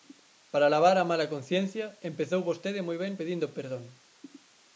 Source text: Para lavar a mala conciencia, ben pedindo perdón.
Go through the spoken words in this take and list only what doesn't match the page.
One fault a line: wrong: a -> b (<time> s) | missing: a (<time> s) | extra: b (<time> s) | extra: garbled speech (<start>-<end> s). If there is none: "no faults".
extra: empezou vostede moi (2.1 s)